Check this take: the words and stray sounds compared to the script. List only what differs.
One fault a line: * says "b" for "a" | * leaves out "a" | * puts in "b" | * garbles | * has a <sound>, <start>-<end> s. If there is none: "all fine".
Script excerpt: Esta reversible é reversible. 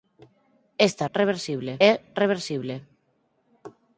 all fine